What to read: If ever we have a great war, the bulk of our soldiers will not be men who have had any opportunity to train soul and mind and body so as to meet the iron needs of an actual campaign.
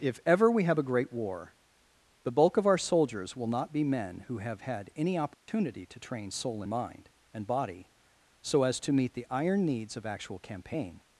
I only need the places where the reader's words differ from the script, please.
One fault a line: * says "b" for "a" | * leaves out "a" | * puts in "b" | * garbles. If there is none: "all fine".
* leaves out "an"